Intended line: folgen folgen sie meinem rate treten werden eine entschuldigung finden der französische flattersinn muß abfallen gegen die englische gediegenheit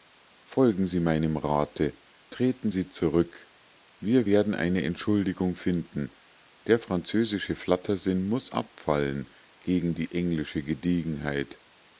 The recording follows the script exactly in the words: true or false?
false